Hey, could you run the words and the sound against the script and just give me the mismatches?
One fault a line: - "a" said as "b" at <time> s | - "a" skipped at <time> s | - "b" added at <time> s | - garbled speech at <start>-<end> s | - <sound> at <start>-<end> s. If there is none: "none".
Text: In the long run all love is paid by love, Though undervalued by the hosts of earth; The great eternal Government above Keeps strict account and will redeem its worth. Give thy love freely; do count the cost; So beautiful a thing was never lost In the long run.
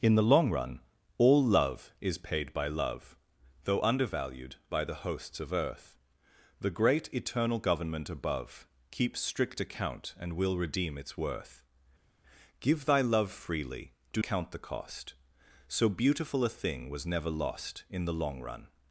none